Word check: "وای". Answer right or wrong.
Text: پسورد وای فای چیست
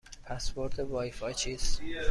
right